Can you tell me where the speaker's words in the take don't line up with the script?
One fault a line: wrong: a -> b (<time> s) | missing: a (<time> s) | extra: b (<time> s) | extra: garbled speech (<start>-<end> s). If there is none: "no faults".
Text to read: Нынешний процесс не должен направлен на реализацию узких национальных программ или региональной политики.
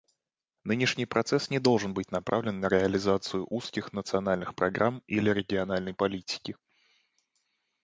extra: быть (1.9 s)